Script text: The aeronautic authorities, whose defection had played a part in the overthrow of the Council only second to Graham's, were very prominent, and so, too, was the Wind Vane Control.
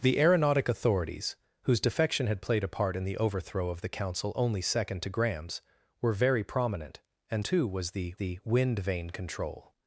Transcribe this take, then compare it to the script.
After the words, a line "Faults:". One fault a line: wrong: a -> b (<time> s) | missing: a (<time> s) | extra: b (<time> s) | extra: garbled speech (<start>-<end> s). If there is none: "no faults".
The aeronautic authorities, whose defection had played a part in the overthrow of the Council only second to Graham's, were very prominent, and too, was the the Wind Vane Control.
Faults:
missing: so (7.5 s)
extra: the (8.2 s)